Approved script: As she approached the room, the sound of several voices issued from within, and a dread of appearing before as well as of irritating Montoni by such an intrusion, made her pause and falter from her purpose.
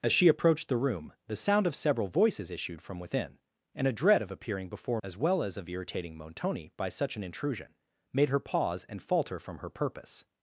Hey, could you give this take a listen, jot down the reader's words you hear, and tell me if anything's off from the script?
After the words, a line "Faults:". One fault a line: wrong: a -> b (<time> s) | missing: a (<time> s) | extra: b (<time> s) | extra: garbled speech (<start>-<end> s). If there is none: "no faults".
As she approached the room, the sound of several voices issued from within, and a dread of appearing before as well as of irritating Montoni by such an intrusion, made her pause and falter from her purpose.
Faults:
no faults